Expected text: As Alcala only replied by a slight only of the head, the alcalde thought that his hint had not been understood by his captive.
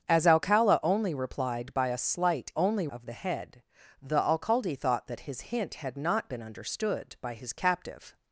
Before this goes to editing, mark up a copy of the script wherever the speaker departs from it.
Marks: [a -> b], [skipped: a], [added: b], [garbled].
As Alcala only replied by a slight only of the head, the alcalde thought that his hint had not been understood by his captive.